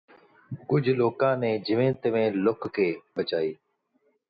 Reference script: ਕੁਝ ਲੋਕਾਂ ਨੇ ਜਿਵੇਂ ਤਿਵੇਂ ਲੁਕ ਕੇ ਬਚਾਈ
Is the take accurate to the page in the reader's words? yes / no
yes